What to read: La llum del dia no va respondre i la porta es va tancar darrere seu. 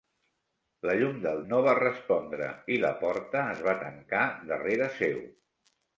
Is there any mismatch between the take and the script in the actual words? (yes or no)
yes